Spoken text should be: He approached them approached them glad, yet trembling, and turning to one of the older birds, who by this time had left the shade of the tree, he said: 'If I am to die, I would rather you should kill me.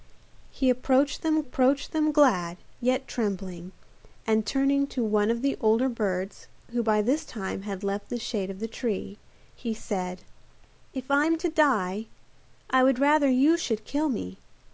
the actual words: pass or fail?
pass